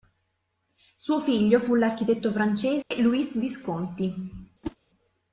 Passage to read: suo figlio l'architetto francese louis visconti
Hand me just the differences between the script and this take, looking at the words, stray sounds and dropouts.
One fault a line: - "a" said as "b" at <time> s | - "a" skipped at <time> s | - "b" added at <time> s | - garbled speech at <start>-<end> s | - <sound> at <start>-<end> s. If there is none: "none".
- "fu" added at 1.6 s
- dropout at 2.8-2.9 s
- whoosh at 4.6-4.8 s